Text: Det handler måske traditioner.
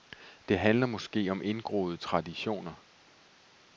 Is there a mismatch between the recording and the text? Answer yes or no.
yes